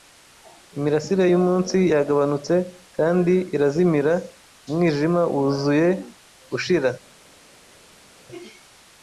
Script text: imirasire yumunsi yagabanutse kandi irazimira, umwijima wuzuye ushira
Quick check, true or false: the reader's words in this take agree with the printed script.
true